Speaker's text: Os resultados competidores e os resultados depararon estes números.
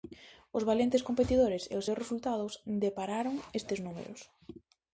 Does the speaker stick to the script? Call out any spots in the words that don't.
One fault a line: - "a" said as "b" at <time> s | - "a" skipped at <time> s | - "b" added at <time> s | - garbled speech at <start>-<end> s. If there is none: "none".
- "resultados" said as "valentes" at 0.7 s
- "seus" added at 1.8 s